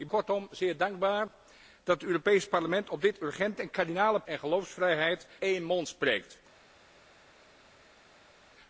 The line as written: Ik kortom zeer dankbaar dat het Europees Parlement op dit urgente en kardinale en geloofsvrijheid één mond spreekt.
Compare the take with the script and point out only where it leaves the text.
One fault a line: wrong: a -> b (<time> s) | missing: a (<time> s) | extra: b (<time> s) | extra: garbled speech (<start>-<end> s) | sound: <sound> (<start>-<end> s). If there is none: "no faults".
no faults